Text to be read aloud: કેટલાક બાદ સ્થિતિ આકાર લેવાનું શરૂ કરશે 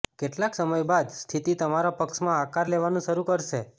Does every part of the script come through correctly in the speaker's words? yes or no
no